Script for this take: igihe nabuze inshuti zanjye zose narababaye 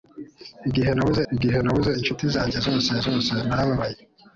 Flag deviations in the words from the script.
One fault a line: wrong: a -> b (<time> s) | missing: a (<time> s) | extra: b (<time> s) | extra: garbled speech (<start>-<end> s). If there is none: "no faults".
extra: igihe nabuze (1.3 s)
extra: zose (3.1 s)